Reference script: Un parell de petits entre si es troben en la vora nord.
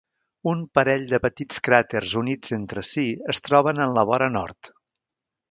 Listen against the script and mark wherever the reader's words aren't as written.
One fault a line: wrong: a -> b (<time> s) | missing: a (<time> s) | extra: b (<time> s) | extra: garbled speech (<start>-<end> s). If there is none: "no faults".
extra: cràters units (1.7 s)